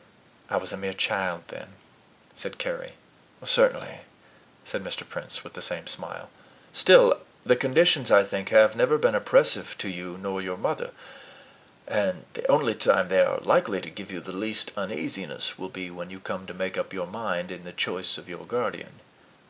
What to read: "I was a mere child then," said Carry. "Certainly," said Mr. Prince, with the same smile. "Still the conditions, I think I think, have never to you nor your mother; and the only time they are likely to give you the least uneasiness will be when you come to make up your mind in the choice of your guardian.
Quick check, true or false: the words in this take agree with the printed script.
false